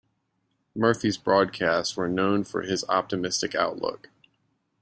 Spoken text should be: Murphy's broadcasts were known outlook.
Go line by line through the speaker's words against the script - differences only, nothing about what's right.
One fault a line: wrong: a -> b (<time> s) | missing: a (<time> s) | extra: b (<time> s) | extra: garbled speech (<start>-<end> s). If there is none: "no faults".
extra: for his optimistic (2.4 s)